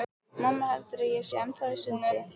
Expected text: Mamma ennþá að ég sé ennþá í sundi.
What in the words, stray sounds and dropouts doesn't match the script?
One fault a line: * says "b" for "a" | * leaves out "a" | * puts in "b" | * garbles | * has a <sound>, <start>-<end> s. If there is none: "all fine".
* says "heldur" for "ennþá"